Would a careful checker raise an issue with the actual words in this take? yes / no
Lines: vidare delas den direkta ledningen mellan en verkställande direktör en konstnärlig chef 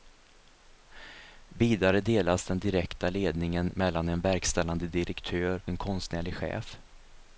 no